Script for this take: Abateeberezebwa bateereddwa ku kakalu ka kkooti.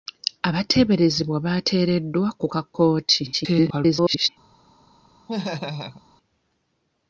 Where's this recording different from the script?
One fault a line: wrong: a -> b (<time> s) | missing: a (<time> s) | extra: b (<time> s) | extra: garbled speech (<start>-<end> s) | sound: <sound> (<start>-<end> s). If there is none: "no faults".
missing: kakalu (2.5 s)
extra: garbled speech (3.3-4.3 s)
sound: laugh (5.3-6.0 s)